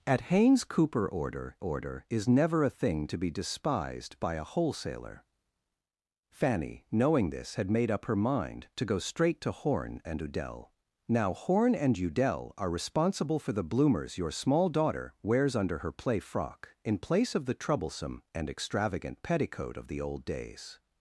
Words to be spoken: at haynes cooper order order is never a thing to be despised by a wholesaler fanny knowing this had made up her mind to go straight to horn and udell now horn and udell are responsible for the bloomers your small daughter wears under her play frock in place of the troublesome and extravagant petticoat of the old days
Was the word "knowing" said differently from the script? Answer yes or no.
no